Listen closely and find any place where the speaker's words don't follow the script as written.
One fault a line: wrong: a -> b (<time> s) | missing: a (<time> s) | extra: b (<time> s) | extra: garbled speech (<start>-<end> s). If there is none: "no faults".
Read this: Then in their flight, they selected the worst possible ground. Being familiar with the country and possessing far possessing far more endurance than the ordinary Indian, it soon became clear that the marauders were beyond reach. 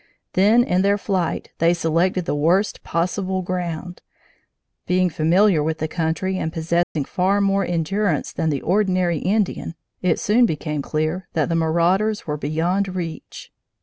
missing: possessing far (7.4 s)